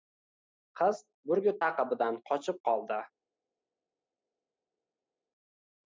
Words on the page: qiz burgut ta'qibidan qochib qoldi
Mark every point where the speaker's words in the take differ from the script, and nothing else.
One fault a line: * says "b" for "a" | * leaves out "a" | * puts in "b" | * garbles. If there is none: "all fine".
all fine